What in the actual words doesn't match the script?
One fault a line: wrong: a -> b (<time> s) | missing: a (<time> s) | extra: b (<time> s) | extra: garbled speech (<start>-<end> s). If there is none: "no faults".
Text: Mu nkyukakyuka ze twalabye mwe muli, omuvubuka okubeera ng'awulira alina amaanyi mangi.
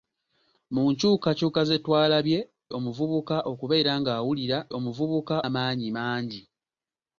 missing: mwe muli (2.4 s)
wrong: alina -> omuvubuka (4.8 s)